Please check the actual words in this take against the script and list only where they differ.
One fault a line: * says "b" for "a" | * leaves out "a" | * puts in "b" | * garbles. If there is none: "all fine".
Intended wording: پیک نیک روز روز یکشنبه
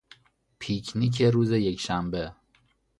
* leaves out "روز"